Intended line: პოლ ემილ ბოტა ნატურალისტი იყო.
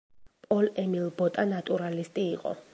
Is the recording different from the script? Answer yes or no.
no